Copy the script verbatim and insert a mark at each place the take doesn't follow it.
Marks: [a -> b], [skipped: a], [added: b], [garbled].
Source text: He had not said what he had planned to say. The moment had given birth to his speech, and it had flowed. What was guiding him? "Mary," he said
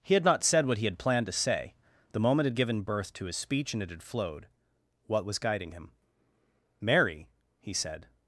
He had not said what he had planned to say. The moment had given birth to his speech, and it had flowed. What was guiding him? "Mary," he said